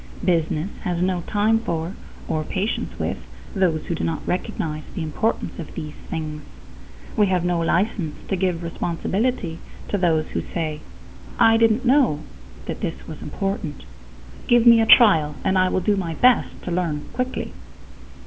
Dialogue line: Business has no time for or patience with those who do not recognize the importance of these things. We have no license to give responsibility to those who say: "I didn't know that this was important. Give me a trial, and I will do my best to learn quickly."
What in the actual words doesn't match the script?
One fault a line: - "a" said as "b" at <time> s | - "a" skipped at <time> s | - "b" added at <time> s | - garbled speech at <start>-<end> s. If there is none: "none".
none